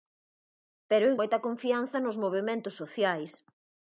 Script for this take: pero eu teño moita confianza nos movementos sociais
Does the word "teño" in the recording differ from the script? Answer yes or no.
yes